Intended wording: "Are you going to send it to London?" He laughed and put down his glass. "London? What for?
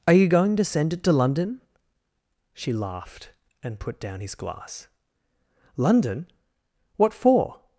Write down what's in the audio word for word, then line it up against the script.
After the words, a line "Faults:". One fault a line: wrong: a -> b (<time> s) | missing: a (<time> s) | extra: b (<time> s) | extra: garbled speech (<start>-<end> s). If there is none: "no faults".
"Are you going to send it to London?" She laughed and put down his glass. "London? What for?
Faults:
wrong: He -> She (2.5 s)